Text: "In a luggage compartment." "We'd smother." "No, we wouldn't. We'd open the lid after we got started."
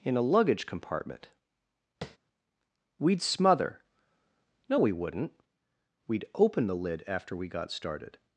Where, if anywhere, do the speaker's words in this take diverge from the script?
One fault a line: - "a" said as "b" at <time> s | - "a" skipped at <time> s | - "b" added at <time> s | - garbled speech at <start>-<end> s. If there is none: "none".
none